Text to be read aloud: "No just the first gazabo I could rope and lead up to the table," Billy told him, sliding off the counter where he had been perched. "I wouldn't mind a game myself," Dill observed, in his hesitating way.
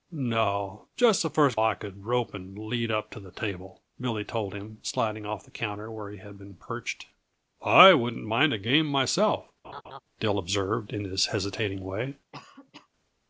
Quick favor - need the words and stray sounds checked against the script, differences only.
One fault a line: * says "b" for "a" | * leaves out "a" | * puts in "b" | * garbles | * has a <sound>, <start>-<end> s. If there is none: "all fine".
* leaves out "gazabo"
* has a laugh, 9.6-10.0 s
* has a cough, 12.3-12.9 s